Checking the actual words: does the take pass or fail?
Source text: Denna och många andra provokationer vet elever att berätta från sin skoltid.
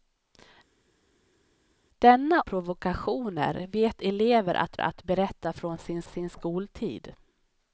fail